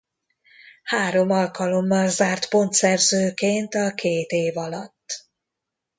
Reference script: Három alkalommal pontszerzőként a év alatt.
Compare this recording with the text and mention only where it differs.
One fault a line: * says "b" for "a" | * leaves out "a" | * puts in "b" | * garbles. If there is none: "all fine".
* puts in "zárt"
* puts in "két"